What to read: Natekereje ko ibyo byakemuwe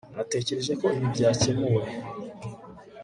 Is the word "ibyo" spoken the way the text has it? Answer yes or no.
no